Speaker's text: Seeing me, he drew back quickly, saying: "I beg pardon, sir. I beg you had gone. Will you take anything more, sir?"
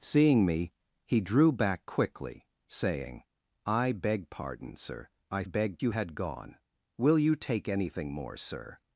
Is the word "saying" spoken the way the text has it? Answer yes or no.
yes